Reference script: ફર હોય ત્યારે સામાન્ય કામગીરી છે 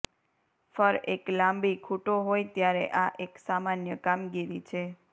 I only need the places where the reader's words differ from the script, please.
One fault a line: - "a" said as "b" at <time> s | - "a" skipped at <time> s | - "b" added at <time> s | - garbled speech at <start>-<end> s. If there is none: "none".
- "એક લાંબી ખૂંટો" added at 1.1 s
- "આ એક" added at 3.0 s